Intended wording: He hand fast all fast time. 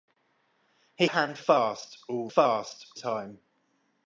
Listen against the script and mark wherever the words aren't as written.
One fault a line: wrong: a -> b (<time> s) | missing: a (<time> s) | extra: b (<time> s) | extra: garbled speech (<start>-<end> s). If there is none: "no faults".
no faults